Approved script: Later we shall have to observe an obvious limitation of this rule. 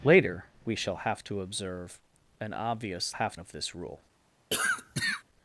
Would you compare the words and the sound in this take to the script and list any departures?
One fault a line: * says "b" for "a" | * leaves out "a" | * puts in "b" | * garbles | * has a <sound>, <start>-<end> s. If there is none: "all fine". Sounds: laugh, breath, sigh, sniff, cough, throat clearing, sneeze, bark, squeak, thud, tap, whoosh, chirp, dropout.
* says "have" for "limitation"
* has a cough, 4.5-5.2 s